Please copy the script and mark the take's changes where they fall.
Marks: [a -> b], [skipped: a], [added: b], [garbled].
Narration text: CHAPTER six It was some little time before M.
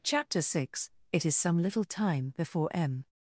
CHAPTER six It [was -> is] some little time before M.